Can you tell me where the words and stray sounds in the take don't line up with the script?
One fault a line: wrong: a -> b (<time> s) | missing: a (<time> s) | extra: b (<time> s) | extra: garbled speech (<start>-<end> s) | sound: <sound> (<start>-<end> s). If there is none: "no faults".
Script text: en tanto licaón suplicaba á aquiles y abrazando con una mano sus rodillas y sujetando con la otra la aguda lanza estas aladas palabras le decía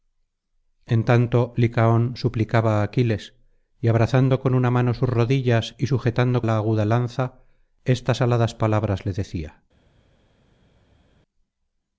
missing: con la otra (6.4 s)